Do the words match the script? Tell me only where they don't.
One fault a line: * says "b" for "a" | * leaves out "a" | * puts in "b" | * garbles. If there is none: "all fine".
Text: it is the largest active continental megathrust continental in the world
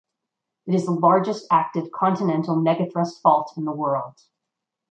* says "fault" for "continental"